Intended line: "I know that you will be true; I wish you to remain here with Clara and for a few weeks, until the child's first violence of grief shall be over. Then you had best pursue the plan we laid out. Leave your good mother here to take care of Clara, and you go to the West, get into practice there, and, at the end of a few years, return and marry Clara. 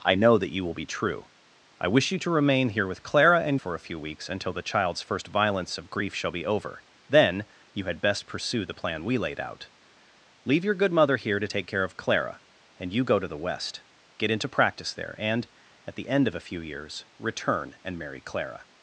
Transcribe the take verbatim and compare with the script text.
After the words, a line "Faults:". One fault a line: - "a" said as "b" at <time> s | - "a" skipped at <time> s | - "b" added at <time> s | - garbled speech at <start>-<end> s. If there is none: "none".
"I know that you will be true; I wish you to remain here with Clara and for a few weeks, until the child's first violence of grief shall be over. Then you had best pursue the plan we laid out. Leave your good mother here to take care of Clara, and you go to the West, get into practice there, and, at the end of a few years, return and marry Clara.
Faults:
none